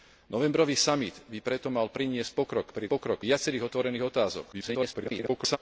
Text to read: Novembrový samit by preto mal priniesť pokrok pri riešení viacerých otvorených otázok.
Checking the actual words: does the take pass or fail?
fail